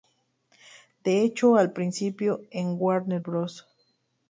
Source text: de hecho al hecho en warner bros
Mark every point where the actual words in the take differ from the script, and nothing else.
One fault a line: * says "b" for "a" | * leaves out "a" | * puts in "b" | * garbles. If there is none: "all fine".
* says "principio" for "hecho"